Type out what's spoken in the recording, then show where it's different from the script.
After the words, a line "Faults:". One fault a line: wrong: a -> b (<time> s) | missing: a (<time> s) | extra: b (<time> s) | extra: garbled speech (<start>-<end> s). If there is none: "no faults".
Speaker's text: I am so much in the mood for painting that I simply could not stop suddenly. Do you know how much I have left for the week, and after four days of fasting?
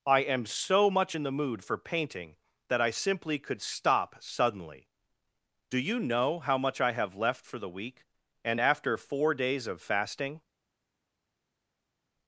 I am so much in the mood for painting that I simply could stop suddenly. Do you know how much I have left for the week, and after four days of fasting?
Faults:
missing: not (3.6 s)